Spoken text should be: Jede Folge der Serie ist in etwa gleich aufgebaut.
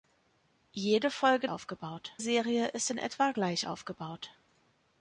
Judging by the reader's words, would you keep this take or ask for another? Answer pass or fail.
fail